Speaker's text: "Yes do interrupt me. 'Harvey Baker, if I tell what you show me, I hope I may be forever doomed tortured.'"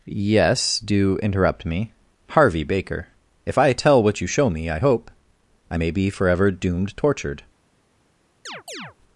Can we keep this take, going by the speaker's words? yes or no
yes